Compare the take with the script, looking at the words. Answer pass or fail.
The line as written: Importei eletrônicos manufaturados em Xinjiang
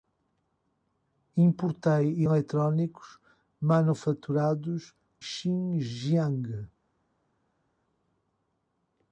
fail